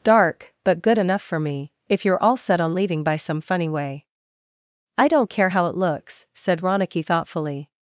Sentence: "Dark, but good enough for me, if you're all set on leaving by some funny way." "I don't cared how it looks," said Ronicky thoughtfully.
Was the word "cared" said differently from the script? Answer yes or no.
yes